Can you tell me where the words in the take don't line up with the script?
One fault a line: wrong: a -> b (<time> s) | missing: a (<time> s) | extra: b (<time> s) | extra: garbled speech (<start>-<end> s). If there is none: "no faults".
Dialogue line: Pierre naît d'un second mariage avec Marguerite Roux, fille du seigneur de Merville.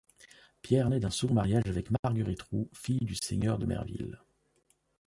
no faults